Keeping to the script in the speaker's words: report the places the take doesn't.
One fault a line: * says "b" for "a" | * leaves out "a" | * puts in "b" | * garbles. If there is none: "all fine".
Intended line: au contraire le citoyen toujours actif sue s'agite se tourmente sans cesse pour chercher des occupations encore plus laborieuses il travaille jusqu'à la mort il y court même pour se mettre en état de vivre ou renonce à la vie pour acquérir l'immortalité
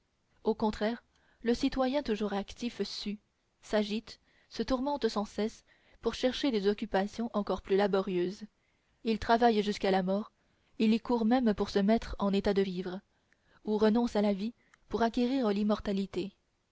all fine